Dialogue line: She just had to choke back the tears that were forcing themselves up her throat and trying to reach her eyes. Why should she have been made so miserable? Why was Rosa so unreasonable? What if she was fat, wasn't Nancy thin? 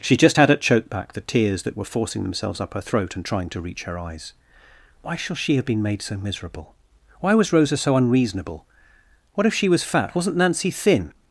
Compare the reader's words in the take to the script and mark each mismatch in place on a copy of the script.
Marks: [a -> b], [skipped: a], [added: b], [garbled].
She just had [to -> at] choke back the tears that were forcing themselves up her throat and trying to reach her eyes. Why [should -> shall] she have been made so miserable? Why was Rosa so unreasonable? What if she was fat, wasn't Nancy thin?